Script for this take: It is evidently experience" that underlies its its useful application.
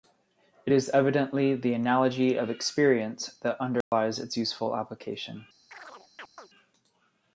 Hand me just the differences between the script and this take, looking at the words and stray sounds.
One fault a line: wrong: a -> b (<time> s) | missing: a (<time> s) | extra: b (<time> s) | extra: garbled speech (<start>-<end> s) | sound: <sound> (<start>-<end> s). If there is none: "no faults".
extra: the analogy of (1.6 s)
sound: dropout (3.8-3.9 s)
missing: its (4.4 s)
sound: chirp (5.7-6.5 s)